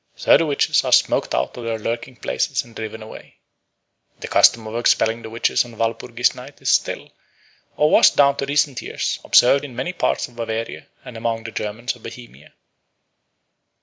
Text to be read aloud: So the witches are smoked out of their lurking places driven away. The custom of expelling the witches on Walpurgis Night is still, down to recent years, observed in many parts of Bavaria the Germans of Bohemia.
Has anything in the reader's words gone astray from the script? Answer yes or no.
yes